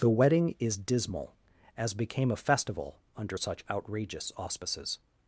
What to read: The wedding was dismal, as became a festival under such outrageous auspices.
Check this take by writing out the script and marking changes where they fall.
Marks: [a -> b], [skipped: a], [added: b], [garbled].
The wedding [was -> is] dismal, as became a festival under such outrageous auspices.